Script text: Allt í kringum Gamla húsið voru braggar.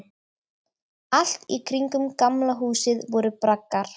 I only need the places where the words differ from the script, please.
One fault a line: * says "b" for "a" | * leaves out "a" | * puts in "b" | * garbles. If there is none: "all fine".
all fine